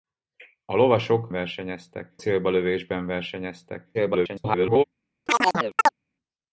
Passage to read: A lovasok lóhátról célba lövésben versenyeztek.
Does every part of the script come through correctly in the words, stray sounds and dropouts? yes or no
no